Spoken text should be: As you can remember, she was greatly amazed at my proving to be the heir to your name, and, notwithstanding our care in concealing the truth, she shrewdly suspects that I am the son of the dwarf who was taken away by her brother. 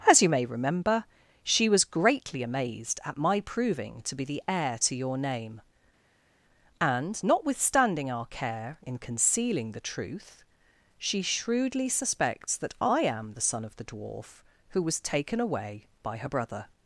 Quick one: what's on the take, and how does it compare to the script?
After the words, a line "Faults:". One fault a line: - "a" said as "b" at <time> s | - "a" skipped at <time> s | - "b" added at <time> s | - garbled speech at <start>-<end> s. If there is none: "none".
As you may remember, she was greatly amazed at my proving to be the heir to your name, and, notwithstanding our care in concealing the truth, she shrewdly suspects that I am the son of the dwarf who was taken away by her brother.
Faults:
- "can" said as "may" at 0.3 s